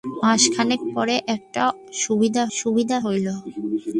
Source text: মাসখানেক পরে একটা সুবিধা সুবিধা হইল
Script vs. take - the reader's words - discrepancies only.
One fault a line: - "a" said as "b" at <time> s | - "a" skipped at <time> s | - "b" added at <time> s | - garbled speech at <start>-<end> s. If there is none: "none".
none